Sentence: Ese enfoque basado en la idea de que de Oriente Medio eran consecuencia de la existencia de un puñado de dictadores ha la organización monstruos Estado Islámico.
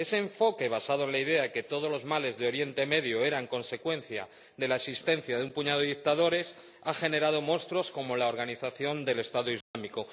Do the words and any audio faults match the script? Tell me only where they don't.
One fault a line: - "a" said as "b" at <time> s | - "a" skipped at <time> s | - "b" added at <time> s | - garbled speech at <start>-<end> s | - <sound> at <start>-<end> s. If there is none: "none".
- "todos los males" added at 1.6 s
- "generado monstruos como" added at 7.0 s
- "monstruos" said as "del" at 9.1 s
- dropout at 9.6-9.7 s